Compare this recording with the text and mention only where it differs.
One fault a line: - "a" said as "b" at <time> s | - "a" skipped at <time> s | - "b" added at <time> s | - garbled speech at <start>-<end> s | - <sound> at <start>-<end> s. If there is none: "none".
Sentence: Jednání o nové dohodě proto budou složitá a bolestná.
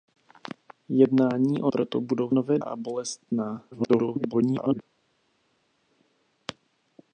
- "nové dohodě" skipped at 1.7 s
- "složitá" said as "nové" at 2.3 s
- garbled speech at 3.7-4.8 s